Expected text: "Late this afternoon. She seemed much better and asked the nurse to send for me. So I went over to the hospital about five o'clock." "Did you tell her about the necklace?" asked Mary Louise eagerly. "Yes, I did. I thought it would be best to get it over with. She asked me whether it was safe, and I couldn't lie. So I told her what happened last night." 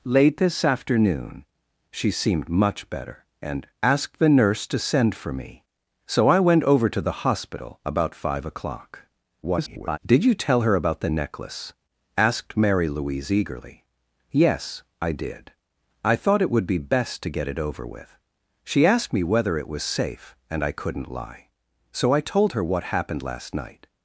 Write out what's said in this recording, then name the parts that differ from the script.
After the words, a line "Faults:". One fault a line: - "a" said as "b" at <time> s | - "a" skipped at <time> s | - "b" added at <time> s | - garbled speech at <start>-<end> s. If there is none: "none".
"Late this afternoon. She seemed much better and asked the nurse to send for me. So I went over to the hospital about five o'clock." [garbled] "Did you tell her about the necklace?" asked Mary Louise eagerly. "Yes, I did. I thought it would be best to get it over with. She asked me whether it was safe, and I couldn't lie. So I told her what happened last night."
Faults:
- garbled speech at 9.4-10.0 s